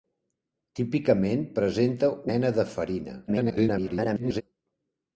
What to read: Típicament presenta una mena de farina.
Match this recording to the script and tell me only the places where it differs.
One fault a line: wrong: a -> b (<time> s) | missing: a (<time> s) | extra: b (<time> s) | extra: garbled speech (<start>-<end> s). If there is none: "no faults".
missing: una (2.1 s)
extra: garbled speech (3.3-4.4 s)